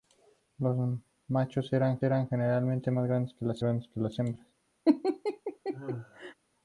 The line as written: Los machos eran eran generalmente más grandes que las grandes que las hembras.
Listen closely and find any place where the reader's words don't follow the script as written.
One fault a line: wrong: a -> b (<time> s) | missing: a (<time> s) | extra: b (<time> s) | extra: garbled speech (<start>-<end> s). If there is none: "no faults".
no faults